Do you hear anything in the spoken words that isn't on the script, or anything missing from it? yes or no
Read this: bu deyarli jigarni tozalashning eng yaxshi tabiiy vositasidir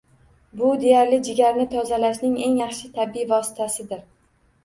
no